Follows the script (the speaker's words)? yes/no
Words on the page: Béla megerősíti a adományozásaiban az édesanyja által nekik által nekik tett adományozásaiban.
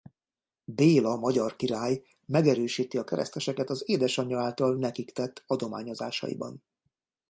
no